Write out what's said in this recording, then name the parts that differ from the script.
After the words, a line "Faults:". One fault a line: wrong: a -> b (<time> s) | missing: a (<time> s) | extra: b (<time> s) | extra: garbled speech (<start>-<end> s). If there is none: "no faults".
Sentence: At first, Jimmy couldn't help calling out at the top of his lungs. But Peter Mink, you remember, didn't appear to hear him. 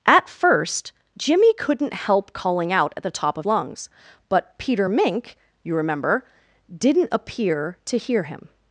At first, Jimmy couldn't help calling out at the top of lungs. But Peter Mink, you remember, didn't appear to hear him.
Faults:
missing: his (3.5 s)